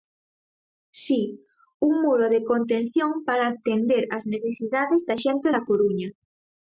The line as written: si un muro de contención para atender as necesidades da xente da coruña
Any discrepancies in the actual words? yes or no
no